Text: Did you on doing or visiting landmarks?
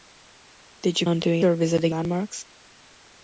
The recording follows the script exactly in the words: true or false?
true